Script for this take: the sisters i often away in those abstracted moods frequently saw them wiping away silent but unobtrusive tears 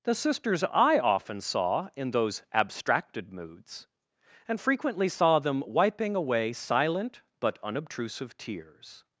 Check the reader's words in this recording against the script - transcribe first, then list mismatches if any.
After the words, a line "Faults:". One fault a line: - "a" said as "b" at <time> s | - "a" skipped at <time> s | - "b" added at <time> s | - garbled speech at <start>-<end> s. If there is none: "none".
the sisters i often saw in those abstracted moods and frequently saw them wiping away silent but unobtrusive tears
Faults:
- "away" said as "saw" at 1.4 s
- "and" added at 4.5 s